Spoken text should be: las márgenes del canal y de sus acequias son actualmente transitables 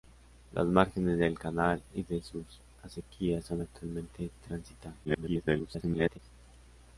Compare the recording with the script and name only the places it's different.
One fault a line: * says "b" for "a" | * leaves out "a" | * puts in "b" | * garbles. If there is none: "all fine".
* garbles